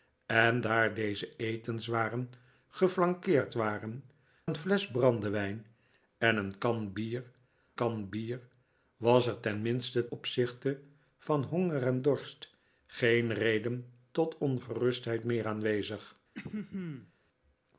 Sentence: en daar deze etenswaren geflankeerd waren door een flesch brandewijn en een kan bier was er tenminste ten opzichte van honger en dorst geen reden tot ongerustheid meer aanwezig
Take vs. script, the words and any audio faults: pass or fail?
fail